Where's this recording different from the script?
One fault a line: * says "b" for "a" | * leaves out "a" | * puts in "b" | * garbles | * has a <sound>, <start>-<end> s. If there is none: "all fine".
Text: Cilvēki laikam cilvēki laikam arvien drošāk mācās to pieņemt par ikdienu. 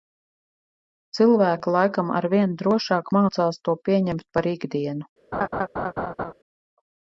* leaves out "cilvēki laikam"
* has a laugh, 5.3-6.3 s